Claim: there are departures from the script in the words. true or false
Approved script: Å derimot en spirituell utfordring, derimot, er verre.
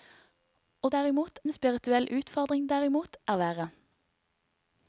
false